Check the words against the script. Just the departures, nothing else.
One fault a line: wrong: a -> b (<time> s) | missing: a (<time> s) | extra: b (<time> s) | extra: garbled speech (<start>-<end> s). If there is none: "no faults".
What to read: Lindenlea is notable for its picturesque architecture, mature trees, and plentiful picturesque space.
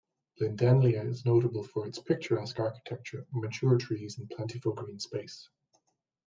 wrong: picturesque -> green (4.7 s)